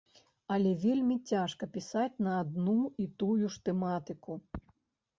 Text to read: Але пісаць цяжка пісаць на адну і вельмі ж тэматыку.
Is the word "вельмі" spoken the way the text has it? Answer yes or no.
no